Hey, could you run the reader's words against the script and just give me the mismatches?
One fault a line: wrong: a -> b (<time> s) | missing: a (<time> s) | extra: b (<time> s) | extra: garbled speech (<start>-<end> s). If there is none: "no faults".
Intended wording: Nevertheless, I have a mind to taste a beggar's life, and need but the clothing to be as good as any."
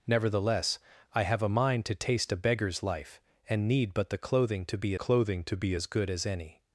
extra: clothing to be (4.9 s)